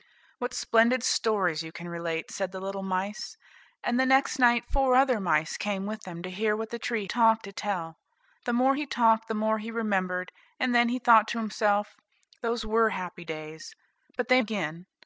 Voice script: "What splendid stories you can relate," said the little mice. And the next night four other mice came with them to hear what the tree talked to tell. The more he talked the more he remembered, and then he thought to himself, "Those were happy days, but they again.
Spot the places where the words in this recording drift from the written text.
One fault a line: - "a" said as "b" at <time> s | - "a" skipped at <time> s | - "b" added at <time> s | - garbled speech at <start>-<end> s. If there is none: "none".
none